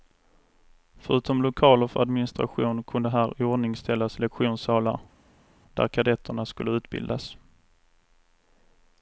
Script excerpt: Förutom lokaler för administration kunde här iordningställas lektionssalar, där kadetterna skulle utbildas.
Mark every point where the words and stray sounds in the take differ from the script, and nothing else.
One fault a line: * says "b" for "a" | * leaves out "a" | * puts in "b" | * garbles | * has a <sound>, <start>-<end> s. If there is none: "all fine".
all fine